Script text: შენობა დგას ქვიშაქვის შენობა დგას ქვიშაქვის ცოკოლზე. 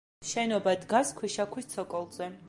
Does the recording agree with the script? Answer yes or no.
no